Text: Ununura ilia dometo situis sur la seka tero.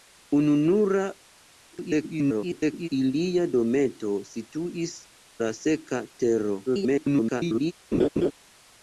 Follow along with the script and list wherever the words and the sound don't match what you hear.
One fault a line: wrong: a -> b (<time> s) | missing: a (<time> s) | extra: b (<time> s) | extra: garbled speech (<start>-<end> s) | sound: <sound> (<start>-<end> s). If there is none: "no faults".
extra: garbled speech (1.7-2.9 s)
missing: sur (5.0 s)
extra: garbled speech (6.7-7.7 s)
sound: laugh (7.9-8.3 s)